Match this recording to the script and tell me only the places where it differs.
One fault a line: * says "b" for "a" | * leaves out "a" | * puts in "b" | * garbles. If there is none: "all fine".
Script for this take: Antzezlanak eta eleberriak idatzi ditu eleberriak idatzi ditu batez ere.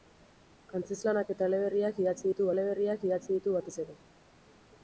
all fine